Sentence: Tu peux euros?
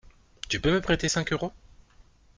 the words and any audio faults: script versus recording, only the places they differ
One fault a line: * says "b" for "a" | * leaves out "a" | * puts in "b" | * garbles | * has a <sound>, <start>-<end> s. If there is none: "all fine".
* puts in "me prêter cinq"